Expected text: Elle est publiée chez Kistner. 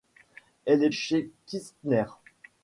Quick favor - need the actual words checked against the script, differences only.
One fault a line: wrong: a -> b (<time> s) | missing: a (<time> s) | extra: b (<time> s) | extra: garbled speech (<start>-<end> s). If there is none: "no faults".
missing: publiée (0.9 s)